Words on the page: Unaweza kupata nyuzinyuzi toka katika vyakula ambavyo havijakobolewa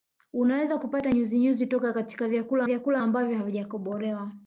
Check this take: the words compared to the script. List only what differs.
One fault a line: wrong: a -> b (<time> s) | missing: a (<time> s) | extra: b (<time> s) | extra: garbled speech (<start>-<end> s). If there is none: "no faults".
extra: vyakula (2.6 s)